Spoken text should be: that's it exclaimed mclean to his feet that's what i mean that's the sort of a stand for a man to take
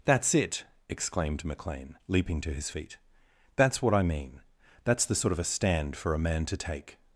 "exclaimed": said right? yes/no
yes